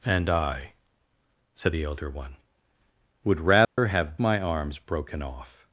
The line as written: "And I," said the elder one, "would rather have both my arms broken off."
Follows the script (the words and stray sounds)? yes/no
no